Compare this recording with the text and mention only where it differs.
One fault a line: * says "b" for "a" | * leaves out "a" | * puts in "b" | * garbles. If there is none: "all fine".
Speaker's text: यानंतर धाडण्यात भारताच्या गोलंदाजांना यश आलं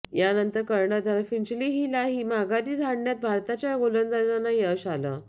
* puts in "कर्णधार फिंचहीलाही माघारी"